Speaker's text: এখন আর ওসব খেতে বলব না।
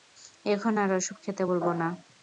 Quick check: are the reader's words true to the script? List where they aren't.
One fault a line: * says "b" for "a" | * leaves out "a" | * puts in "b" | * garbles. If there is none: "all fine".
all fine